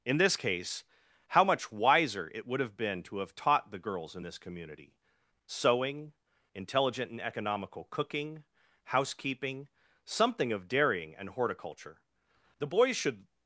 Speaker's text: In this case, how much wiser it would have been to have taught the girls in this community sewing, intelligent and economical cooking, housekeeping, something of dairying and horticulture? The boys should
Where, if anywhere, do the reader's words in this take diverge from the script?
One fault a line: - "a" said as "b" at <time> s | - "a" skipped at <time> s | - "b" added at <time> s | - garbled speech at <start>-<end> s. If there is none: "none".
none